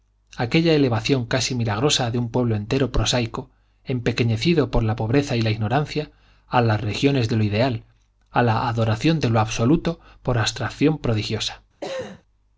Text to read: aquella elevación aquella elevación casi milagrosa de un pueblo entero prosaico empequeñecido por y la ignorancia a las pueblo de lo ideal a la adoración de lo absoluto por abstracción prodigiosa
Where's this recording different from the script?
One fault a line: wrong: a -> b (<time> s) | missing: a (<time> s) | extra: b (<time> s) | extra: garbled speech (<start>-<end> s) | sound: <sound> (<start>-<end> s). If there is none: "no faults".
missing: aquella elevación (1.2 s)
extra: la pobreza (4.8 s)
wrong: pueblo -> regiones (6.8 s)
sound: cough (11.8-12.2 s)